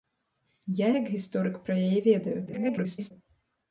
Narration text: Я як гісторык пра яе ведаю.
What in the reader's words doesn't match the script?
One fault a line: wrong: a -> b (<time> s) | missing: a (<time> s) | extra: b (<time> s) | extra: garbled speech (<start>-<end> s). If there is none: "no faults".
extra: garbled speech (2.5-3.1 s)